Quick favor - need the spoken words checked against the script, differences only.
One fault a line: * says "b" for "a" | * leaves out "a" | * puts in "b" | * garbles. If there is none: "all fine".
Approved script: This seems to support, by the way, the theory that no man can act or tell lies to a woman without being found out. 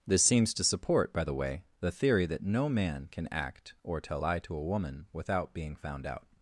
* says "lie" for "lies"